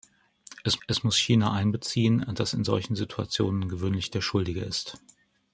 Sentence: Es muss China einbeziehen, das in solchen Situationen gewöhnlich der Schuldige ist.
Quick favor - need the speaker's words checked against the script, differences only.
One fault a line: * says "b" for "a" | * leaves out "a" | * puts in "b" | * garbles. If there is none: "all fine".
* puts in "es"